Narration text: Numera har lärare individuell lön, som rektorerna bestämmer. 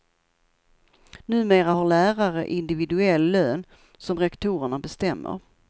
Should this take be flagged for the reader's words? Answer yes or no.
no